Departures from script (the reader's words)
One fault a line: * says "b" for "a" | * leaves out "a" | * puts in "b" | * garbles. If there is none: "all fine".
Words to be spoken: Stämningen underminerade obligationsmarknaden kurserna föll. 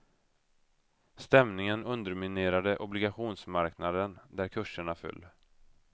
* puts in "där"